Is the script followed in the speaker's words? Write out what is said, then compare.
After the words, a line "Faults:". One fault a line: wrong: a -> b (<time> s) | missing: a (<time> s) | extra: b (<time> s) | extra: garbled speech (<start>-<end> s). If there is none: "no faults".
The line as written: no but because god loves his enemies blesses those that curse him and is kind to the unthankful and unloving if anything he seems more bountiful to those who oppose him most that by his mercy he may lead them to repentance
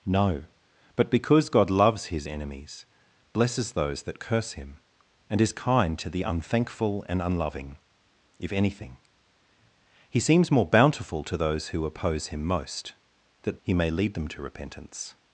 no but because god loves his enemies blesses those that curse him and is kind to the unthankful and unloving if anything he seems more bountiful to those who oppose him most that he may lead them to repentance
Faults:
missing: by his mercy (13.6 s)